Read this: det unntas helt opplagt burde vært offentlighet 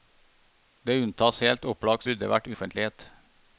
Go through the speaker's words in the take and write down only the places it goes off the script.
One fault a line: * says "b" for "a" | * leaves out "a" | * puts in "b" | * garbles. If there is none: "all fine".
all fine